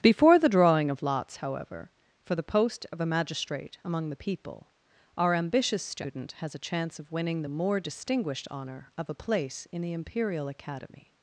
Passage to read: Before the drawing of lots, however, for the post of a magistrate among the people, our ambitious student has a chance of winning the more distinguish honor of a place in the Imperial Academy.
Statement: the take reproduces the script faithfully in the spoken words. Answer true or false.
false